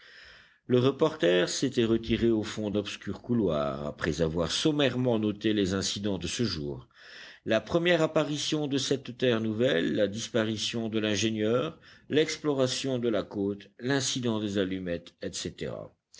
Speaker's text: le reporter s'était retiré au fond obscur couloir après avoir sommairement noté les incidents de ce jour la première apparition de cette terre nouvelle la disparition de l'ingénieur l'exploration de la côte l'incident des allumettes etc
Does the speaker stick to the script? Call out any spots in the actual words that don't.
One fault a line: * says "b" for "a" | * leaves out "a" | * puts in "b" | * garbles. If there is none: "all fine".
all fine